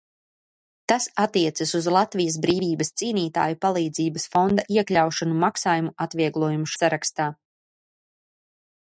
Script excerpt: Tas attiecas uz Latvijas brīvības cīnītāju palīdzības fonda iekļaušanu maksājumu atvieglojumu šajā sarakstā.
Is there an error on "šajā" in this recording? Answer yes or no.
yes